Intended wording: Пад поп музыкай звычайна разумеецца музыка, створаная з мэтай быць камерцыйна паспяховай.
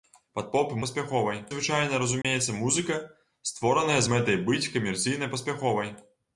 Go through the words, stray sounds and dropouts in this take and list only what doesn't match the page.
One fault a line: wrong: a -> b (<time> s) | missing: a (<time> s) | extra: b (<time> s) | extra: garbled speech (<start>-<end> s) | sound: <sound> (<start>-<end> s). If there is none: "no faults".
wrong: музыкай -> паспяховай (0.9 s)
sound: dropout (2.2-2.2 s)